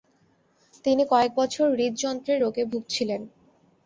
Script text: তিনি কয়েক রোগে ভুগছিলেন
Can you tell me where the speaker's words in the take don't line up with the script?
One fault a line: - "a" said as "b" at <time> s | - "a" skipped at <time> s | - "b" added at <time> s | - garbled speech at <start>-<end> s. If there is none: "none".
- "বছর হৃদযন্ত্রের" added at 1.4 s